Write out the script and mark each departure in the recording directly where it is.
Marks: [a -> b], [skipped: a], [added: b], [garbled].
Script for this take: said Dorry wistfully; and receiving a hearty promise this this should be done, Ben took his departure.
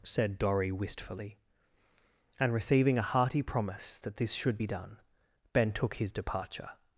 said Dorry wistfully; and receiving a hearty promise [this -> that] this should be done, Ben took his departure.